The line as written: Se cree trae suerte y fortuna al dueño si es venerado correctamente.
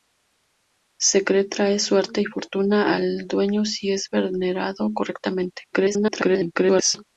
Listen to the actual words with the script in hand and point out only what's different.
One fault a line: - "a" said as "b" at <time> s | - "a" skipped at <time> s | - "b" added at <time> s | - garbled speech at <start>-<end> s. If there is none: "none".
- garbled speech at 5.7-7.0 s